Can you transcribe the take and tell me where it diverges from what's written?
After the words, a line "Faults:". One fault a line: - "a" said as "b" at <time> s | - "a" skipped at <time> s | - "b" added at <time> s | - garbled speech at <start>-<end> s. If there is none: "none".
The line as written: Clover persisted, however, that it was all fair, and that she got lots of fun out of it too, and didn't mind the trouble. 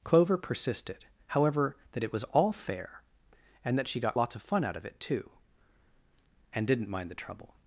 Clover persisted, however, that it was all fair, and that she got lots of fun out of it too, and didn't mind the trouble.
Faults:
none